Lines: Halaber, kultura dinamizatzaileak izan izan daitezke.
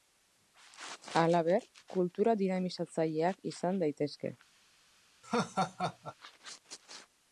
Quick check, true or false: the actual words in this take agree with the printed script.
false